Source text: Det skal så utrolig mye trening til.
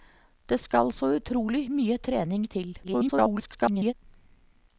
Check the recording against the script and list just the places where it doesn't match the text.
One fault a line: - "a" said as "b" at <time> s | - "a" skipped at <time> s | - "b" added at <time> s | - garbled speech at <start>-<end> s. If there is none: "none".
- garbled speech at 2.8-3.9 s